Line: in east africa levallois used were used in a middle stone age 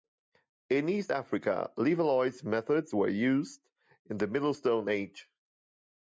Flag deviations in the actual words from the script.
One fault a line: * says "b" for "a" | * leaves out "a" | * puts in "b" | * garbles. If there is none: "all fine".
* says "methods" for "used"
* says "the" for "a"